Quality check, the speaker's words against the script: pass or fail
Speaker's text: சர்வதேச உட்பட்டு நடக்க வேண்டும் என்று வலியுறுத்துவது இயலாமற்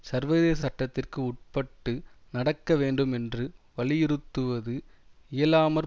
fail